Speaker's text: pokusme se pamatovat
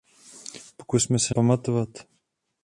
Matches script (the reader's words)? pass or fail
pass